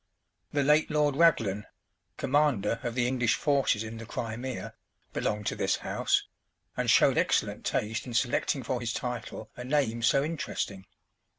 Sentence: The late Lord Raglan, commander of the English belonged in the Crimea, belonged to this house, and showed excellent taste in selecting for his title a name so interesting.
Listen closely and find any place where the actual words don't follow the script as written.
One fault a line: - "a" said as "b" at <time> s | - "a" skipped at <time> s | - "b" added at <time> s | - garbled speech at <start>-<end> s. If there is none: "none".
- "belonged" said as "forces" at 3.3 s